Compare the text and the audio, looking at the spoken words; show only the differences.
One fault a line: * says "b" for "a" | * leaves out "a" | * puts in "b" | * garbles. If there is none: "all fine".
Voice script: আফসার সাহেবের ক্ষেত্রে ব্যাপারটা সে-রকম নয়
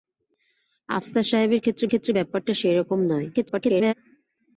* puts in "ক্ষেত্রে"
* garbles